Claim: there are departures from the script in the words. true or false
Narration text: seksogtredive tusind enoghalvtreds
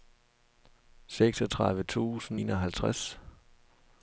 false